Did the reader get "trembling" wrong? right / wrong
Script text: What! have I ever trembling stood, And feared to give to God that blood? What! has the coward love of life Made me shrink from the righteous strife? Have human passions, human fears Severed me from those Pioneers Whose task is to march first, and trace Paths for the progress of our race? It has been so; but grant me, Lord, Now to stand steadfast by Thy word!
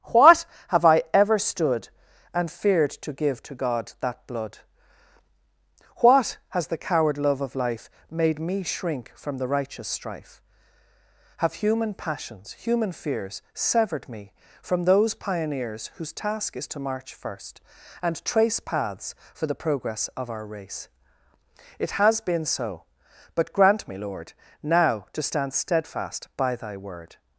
wrong